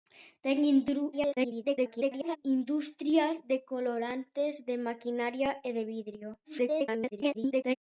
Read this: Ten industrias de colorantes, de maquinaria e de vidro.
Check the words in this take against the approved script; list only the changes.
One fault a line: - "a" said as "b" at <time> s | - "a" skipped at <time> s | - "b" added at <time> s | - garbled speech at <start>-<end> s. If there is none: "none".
- garbled speech at 1.1-2.4 s
- garbled speech at 6.4-7.8 s